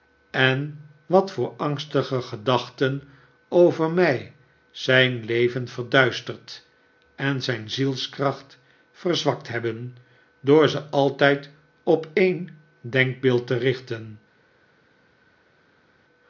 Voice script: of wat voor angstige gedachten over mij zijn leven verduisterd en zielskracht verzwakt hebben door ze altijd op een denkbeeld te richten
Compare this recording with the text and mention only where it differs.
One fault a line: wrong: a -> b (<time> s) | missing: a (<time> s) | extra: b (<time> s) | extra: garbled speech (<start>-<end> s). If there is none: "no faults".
wrong: of -> en (0.3 s)
extra: zijn (7.4 s)